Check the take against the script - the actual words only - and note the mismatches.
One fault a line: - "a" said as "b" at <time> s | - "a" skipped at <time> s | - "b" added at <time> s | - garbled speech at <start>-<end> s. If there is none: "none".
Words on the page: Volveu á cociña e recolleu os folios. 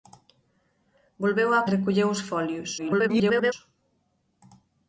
- "cociña" skipped at 1.6 s
- garbled speech at 2.8-3.5 s